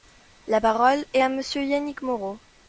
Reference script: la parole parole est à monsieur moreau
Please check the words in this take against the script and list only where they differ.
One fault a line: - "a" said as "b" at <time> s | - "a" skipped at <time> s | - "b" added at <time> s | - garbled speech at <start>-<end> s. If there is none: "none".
- "parole" skipped at 1.1 s
- "yannick" added at 1.6 s